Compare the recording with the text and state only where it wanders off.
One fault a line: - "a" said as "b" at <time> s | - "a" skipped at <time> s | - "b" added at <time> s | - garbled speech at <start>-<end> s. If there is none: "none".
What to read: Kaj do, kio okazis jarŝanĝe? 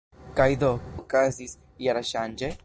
- "kio" skipped at 0.7 s